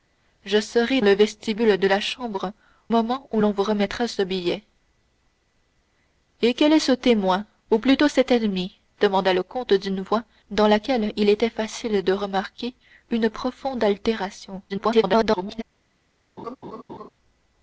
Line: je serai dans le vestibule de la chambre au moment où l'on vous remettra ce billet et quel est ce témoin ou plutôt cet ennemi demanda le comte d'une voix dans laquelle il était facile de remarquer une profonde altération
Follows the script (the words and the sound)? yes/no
no